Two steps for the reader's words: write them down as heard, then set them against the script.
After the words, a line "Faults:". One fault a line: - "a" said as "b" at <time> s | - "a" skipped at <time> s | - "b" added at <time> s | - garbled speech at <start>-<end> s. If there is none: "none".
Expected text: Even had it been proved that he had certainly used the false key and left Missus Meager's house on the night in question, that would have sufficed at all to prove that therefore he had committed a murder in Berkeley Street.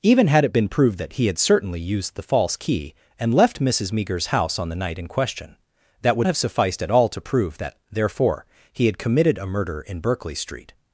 Even had it been proved that he had certainly used the false key and left Missus Meager's house on the night in question, that would have sufficed at all to prove that therefore he had committed a murder in Berkeley Street.
Faults:
none